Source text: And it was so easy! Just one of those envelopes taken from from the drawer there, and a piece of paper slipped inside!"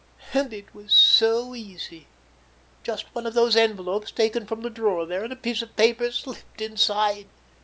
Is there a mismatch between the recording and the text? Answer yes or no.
yes